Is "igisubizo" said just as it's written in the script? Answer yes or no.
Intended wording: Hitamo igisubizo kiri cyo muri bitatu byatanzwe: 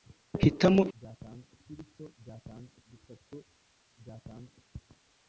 no